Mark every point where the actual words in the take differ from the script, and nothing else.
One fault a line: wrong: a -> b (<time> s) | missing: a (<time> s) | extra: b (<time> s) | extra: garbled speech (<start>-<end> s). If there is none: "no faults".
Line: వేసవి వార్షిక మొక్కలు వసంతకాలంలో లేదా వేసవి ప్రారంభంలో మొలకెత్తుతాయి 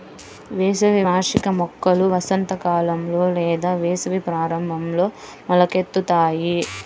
no faults